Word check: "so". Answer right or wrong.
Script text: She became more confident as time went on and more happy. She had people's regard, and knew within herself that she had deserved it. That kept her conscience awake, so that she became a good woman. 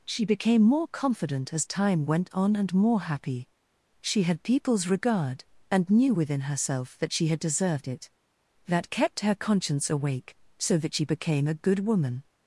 right